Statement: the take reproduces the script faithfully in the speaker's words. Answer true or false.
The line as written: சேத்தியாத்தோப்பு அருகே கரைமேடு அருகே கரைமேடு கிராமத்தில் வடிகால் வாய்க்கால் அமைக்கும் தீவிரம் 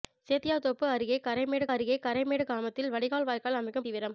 true